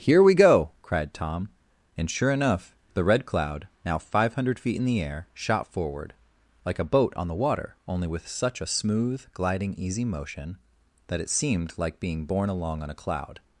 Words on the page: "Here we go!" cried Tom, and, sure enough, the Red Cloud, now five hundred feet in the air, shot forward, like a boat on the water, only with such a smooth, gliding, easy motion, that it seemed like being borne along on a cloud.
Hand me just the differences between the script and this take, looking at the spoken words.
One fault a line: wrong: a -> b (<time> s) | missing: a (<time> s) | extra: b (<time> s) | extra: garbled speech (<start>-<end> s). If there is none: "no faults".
no faults